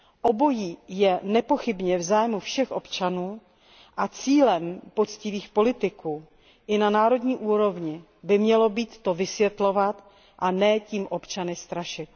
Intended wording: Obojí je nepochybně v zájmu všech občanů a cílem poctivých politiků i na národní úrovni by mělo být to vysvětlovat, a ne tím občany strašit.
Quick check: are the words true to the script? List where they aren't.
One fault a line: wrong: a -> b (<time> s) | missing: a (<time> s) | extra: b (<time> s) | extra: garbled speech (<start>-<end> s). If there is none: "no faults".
no faults